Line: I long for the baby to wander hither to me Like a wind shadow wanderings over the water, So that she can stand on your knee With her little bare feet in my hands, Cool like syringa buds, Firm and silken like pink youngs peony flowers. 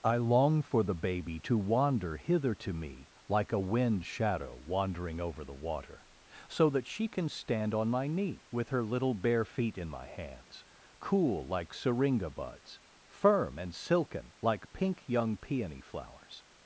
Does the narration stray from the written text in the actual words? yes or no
yes